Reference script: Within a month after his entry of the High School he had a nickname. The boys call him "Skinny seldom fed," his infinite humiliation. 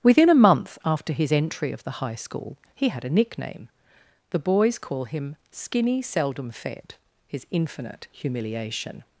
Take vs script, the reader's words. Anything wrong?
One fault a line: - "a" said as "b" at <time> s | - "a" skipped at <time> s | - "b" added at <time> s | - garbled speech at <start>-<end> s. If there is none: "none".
none